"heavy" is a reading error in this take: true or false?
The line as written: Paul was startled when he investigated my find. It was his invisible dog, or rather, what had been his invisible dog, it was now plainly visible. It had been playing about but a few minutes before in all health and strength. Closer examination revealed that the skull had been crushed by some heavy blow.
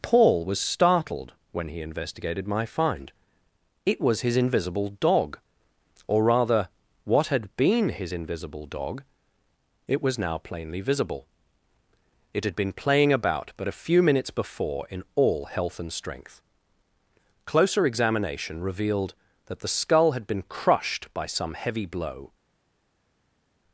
false